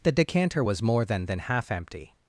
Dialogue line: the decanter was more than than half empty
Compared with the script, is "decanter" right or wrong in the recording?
right